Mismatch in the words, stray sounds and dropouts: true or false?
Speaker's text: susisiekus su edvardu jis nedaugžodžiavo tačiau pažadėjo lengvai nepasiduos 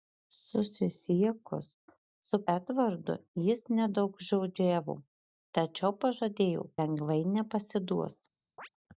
true